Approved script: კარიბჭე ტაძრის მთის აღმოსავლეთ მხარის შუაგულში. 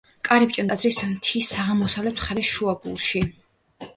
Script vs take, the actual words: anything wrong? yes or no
no